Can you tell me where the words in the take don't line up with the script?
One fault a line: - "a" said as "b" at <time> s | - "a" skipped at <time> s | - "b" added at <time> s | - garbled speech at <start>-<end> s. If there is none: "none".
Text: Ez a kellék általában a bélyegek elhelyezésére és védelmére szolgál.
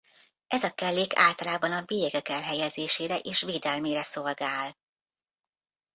none